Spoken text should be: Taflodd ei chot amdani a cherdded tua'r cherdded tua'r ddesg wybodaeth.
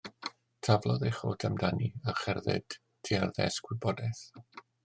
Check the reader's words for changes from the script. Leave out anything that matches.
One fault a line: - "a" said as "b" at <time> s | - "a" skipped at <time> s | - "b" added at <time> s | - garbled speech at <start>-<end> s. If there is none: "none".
- "cherdded tua'r" skipped at 3.4 s